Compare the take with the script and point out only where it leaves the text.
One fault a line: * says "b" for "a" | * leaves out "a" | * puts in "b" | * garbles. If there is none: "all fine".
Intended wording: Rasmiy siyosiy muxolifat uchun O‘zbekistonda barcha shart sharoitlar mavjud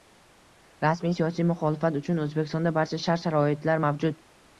all fine